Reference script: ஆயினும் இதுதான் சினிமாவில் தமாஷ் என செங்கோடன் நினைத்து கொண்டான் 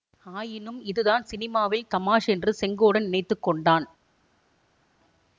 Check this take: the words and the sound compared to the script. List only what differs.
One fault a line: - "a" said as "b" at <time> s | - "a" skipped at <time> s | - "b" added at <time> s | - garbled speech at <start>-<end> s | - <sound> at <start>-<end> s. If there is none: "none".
- "என" said as "என்று" at 2.3 s